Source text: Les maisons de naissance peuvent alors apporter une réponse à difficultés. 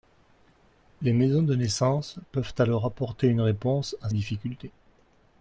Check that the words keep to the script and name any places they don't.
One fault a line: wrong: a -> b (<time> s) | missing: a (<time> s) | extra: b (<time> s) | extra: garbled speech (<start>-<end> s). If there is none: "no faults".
no faults